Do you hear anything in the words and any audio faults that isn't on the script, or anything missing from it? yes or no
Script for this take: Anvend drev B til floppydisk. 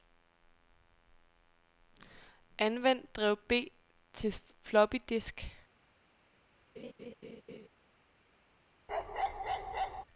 yes